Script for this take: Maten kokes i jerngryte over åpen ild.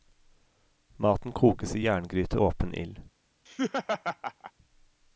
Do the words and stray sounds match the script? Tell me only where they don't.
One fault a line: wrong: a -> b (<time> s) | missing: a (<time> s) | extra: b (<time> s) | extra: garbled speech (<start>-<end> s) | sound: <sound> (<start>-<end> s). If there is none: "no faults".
missing: over (2.4 s)
sound: laugh (3.5-4.5 s)